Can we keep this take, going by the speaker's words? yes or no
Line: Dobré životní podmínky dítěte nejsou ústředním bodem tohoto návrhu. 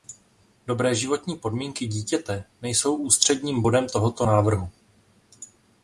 yes